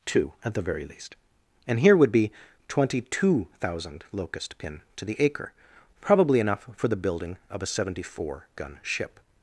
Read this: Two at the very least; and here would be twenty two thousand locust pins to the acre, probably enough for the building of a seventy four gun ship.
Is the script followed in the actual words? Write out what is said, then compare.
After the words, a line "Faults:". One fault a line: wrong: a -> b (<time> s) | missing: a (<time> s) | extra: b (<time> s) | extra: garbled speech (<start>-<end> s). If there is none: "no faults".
Two at the very least; and here would be twenty two thousand locust pin to the acre, probably enough for the building of a seventy four gun ship.
Faults:
wrong: pins -> pin (4.6 s)